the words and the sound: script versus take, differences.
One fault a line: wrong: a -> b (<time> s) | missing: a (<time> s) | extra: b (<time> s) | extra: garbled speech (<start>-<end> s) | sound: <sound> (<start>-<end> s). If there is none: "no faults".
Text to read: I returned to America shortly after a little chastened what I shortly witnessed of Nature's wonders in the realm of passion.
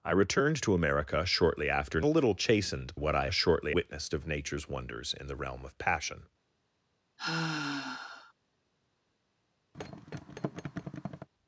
sound: sigh (7.2-8.3 s)
sound: thud (9.7-11.3 s)